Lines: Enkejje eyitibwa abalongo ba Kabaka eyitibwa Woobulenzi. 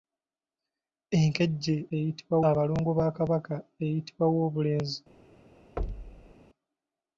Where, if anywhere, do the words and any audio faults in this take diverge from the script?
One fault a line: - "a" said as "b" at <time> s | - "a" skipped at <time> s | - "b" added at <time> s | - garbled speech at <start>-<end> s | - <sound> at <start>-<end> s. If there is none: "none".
- thud at 5.8-6.3 s